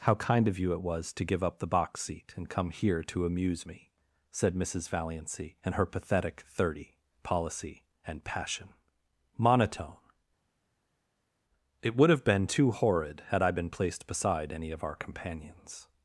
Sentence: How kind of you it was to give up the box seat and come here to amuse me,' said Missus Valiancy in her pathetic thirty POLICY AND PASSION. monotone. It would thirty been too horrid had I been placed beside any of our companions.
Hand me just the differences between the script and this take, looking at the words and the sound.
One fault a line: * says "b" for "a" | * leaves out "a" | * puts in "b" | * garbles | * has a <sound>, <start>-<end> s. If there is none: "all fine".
* says "have" for "thirty"